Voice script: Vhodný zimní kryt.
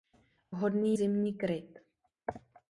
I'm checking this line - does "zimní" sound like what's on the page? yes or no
yes